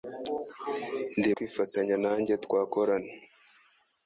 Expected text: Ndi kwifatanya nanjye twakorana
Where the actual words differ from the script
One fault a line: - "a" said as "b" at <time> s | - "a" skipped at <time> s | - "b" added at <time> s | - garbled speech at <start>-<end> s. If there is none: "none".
none